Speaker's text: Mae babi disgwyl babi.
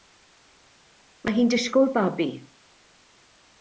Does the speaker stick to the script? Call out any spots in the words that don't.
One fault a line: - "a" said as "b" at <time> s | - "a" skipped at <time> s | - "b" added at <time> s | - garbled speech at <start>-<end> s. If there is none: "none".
- "babi" said as "hi'n" at 1.4 s